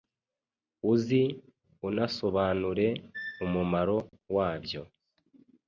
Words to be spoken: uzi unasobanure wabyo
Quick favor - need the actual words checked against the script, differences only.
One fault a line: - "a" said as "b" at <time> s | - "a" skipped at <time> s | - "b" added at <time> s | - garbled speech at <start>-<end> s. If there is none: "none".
- "umumaro" added at 3.4 s